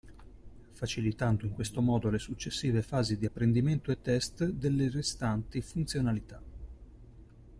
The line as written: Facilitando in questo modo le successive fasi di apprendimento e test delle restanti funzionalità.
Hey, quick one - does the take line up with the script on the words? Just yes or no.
yes